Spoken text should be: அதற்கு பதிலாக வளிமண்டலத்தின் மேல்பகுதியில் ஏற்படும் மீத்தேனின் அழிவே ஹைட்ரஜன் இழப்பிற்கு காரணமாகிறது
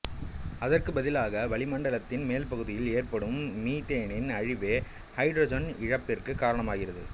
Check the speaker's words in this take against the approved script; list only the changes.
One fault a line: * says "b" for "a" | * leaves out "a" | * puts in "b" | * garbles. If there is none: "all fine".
all fine